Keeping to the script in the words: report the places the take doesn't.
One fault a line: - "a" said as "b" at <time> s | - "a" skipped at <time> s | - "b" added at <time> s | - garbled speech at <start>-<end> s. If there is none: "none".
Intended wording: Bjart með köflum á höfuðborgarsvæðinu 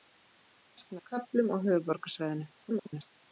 - garbled speech at 2.6-3.1 s